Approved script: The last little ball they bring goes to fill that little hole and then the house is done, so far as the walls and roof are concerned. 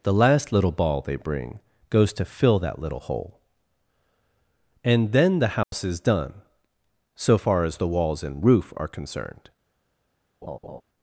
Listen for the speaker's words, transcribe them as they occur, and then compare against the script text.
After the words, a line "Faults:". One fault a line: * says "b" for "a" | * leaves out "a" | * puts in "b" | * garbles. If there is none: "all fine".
The last little ball they bring goes to fill that little hole and then the house is done, so far as the walls and roof are concerned.
Faults:
all fine